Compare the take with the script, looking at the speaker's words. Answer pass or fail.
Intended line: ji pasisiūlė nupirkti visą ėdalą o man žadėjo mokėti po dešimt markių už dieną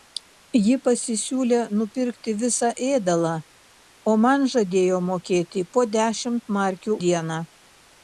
fail